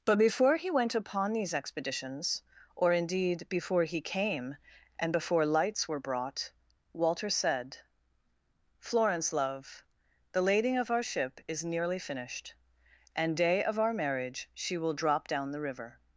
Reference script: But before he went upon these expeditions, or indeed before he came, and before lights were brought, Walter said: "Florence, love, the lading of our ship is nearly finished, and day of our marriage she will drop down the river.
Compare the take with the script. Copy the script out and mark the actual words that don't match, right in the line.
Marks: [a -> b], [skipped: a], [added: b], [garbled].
But before he went upon these expeditions, or indeed before he came, and before lights were brought, Walter said: "Florence, love, the lading of our ship is nearly finished, and day of our marriage she will drop down the river.